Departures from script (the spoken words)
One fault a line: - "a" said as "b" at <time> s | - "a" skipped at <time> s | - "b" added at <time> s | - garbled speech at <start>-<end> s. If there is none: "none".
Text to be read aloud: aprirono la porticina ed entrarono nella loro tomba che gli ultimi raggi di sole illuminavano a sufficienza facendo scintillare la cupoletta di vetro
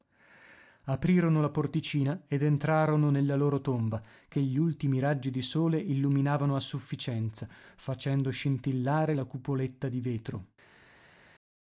none